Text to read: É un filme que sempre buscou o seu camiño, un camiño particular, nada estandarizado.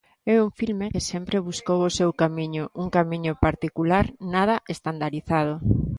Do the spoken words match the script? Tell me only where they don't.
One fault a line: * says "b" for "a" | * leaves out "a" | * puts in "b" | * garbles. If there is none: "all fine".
all fine